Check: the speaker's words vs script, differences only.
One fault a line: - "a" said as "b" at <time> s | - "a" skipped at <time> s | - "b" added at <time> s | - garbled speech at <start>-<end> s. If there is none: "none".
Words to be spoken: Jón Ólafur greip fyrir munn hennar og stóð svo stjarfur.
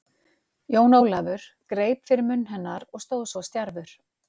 none